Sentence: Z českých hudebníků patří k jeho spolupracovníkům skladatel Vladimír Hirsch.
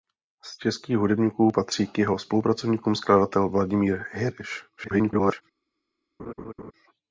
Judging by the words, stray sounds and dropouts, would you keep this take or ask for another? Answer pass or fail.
fail